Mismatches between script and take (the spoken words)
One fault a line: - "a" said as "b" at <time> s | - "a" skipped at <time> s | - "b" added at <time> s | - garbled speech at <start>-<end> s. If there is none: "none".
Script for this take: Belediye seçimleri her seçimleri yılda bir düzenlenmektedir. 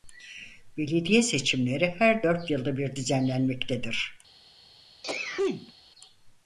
- "seçimleri" said as "dört" at 2.2 s